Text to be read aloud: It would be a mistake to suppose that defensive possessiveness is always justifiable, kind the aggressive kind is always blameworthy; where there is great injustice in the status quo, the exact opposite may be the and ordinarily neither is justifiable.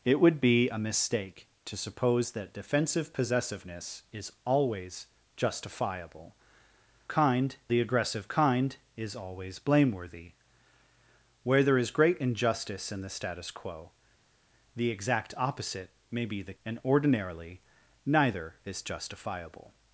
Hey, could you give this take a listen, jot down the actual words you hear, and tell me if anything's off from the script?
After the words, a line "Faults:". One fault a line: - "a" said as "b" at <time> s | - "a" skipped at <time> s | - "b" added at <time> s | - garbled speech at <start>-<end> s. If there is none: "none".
It would be a mistake to suppose that defensive possessiveness is always justifiable, kind the aggressive kind is always blameworthy; where there is great injustice in the status quo, the exact opposite may be the and ordinarily neither is justifiable.
Faults:
none